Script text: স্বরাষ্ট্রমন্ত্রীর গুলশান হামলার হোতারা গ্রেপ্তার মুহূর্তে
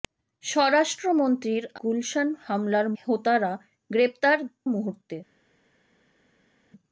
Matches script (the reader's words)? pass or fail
pass